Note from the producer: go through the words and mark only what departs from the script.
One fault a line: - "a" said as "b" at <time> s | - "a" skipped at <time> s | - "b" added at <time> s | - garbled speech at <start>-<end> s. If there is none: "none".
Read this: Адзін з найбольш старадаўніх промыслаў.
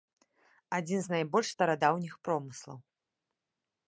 none